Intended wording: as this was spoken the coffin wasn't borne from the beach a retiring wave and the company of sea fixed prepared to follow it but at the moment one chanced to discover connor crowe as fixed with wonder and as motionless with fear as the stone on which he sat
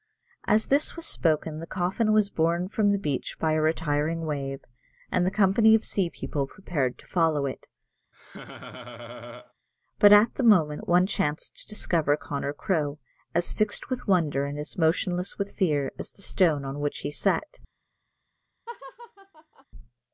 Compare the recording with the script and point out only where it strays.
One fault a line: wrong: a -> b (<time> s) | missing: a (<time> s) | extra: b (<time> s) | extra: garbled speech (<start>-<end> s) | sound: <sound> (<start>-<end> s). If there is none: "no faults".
wrong: wasn't -> was (2.1 s)
extra: by (3.4 s)
wrong: fixed -> people (6.1 s)
sound: laugh (8.1-9.5 s)
sound: laugh (18.7-19.7 s)